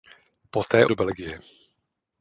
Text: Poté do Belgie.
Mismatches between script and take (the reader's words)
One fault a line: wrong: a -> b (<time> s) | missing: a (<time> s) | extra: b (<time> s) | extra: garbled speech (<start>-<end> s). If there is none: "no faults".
no faults